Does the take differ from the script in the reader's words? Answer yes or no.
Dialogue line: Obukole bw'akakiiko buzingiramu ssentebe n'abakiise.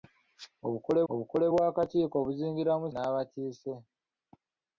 yes